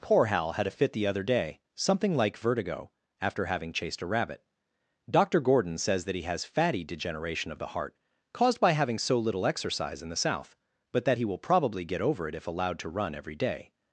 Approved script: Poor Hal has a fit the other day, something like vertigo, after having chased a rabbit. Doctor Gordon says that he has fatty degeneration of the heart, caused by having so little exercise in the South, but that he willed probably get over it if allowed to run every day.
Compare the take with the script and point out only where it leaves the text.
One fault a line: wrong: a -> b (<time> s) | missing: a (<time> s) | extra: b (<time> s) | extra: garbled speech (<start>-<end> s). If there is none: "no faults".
wrong: has -> had (0.5 s)
wrong: willed -> will (11.2 s)